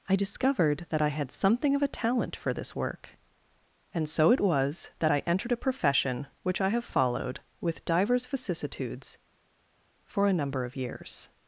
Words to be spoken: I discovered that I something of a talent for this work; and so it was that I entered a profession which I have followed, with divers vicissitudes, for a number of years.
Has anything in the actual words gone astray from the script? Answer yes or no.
yes